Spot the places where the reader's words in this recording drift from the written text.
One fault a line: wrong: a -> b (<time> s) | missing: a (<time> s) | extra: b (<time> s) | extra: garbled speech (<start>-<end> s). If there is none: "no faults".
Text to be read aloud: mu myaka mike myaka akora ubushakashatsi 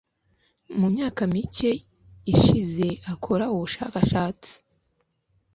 wrong: myaka -> ishize (2.3 s)